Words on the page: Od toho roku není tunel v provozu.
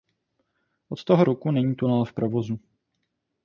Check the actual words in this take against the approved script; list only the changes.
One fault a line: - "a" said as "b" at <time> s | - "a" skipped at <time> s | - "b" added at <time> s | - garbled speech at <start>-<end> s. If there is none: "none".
none